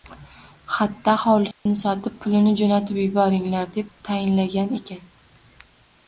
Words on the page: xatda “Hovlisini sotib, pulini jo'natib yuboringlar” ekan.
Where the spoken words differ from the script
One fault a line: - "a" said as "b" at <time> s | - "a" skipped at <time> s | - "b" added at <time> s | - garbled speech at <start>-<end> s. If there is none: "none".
- "deb tayinlagan" added at 3.7 s